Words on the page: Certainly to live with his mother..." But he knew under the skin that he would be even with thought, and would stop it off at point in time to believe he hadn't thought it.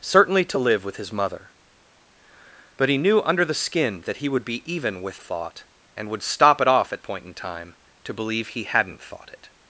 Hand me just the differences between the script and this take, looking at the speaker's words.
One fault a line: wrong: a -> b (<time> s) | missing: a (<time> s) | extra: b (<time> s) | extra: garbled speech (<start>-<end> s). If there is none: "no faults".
no faults